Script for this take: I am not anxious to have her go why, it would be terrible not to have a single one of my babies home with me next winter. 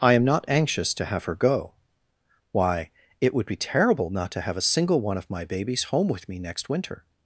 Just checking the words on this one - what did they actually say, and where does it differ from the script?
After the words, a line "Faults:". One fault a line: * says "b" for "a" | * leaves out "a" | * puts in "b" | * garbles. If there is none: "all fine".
I am not anxious to have her go why, it would be terrible not to have a single one of my babies home with me next winter.
Faults:
all fine